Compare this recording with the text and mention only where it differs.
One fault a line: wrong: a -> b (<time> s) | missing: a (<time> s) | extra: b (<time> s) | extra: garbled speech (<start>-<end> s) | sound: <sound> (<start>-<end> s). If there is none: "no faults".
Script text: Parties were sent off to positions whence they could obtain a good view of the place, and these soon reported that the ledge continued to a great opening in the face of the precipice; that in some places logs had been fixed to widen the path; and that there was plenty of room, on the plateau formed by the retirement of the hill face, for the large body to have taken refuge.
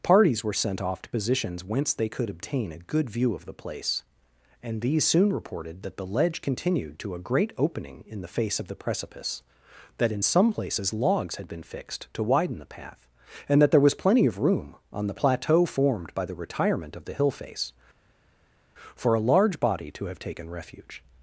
wrong: the -> a (19.1 s)